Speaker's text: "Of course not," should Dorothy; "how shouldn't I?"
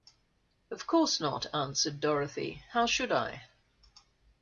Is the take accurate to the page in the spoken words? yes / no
no